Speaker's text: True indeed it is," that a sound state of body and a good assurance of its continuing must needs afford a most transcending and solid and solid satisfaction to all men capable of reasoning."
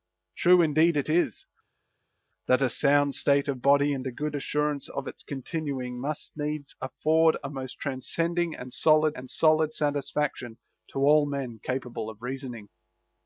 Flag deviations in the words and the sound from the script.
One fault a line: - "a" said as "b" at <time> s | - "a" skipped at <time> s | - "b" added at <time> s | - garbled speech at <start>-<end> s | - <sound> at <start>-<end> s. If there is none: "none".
none